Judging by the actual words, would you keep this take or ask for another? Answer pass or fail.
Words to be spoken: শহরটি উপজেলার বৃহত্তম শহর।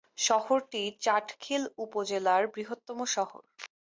fail